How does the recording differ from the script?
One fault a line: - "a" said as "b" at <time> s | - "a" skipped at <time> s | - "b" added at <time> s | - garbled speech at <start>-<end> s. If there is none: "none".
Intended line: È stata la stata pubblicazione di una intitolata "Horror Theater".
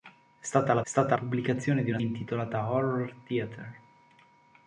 none